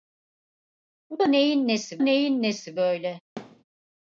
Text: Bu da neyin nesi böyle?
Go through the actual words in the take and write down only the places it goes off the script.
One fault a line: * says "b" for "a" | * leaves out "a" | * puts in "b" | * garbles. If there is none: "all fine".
* puts in "neyin nesi"